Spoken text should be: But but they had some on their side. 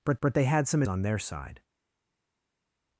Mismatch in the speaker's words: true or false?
false